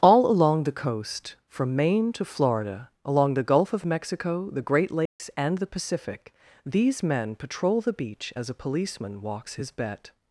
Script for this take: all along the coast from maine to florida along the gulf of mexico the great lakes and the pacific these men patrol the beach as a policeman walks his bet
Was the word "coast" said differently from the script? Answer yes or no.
no